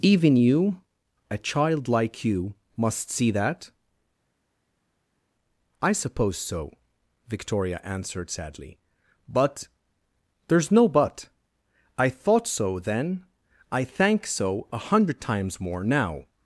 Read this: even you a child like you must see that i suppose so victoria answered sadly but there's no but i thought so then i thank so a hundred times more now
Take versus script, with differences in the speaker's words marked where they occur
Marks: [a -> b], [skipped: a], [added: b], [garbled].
even you a child like you must see that i suppose so victoria answered sadly but there's no but i thought so then i thank so a hundred times more now